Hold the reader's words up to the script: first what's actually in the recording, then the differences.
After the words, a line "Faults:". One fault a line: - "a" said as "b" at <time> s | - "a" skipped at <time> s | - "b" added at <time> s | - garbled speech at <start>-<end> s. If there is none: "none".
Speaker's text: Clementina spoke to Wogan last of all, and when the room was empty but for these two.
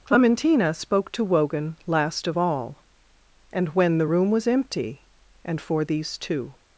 Clementina spoke to Wogan last of all, and when the room was empty and for these two.
Faults:
- "but" said as "and" at 5.4 s